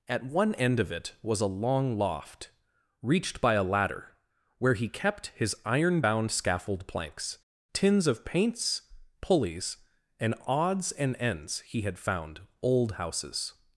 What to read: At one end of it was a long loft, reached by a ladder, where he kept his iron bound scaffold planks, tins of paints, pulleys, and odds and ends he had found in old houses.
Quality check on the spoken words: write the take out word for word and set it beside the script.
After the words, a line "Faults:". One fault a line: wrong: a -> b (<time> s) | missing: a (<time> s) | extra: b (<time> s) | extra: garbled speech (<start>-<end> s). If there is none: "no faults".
At one end of it was a long loft, reached by a ladder, where he kept his iron bound scaffold planks, tins of paints, pulleys, and odds and ends he had found old houses.
Faults:
missing: in (12.4 s)